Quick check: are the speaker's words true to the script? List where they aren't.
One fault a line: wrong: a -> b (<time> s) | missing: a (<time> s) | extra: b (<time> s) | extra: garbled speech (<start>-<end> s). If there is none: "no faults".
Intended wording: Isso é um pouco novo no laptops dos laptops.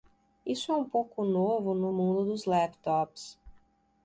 wrong: laptops -> mundo (1.9 s)